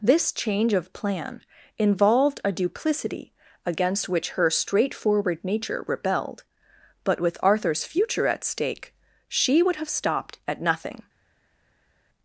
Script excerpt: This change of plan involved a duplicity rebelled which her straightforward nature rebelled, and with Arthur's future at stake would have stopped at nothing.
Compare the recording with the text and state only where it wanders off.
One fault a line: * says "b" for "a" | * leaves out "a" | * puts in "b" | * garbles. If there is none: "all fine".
* says "against" for "rebelled"
* says "but" for "and"
* puts in "she"